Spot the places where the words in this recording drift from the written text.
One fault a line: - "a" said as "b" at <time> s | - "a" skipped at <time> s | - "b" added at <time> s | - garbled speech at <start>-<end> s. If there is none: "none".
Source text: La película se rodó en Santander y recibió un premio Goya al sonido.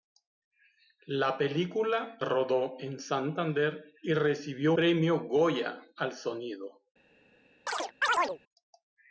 - "se" skipped at 2.2 s
- "un" skipped at 4.7 s